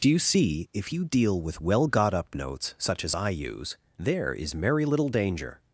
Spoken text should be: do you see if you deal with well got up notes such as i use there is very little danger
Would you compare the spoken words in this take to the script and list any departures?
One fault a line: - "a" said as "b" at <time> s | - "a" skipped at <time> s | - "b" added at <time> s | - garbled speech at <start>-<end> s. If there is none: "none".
- "very" said as "merry" at 4.5 s